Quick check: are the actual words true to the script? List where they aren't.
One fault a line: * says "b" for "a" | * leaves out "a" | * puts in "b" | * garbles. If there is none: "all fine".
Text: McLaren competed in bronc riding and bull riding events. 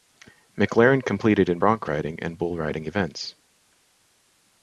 all fine